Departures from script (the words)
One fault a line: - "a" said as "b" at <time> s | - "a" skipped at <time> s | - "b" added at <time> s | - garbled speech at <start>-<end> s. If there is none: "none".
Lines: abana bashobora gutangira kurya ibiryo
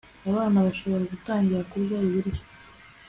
none